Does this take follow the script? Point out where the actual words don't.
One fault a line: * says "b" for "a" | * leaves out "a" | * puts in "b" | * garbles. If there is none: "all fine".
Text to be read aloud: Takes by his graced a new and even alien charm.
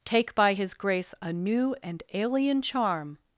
* says "Take" for "Takes"
* says "grace" for "graced"
* leaves out "even"